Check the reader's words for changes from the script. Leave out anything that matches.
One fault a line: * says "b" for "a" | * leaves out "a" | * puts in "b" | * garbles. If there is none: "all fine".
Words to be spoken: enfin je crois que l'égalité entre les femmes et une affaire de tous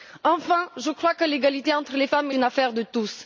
all fine